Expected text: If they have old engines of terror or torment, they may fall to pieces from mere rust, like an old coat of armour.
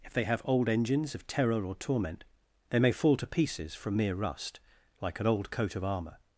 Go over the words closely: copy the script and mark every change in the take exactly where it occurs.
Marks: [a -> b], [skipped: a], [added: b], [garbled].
If they have old engines of terror or torment, they may fall to pieces from mere rust, like an old coat of armour.